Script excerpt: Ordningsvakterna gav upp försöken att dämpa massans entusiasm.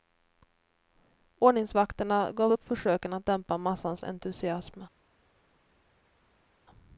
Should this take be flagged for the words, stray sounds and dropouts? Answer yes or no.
no